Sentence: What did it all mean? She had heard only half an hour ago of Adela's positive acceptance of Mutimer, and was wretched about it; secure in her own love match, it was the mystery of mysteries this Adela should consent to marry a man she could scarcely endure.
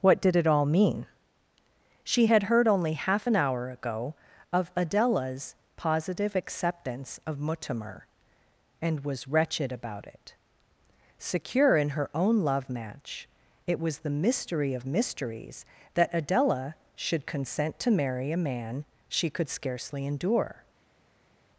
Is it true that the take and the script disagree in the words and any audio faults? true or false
true